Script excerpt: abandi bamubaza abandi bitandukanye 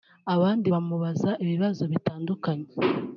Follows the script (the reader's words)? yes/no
no